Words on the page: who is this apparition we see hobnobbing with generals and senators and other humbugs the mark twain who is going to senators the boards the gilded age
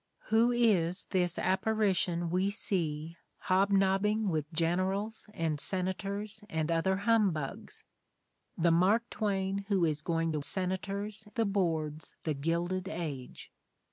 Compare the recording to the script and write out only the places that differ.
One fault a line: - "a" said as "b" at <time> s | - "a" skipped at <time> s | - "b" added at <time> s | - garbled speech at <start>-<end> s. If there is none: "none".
none